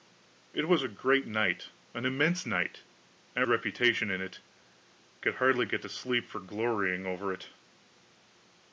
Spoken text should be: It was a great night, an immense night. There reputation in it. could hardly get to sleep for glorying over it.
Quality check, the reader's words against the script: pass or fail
pass